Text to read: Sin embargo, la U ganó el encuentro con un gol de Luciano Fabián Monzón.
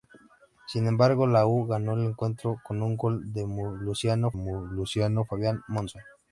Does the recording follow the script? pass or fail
fail